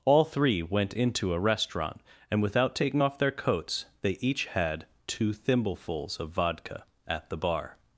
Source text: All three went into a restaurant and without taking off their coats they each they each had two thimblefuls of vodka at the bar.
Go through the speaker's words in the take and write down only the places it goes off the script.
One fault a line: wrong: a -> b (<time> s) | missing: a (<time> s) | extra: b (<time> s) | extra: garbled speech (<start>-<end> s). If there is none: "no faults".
missing: they each (4.4 s)